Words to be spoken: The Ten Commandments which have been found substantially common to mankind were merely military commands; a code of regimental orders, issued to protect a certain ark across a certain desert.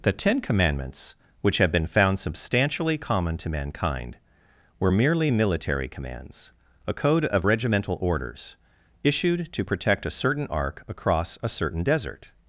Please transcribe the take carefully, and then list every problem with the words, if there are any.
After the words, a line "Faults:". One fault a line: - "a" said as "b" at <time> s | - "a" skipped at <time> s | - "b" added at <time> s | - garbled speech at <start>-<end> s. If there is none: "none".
The Ten Commandments which have been found substantially common to mankind were merely military commands; a code of regimental orders, issued to protect a certain ark across a certain desert.
Faults:
none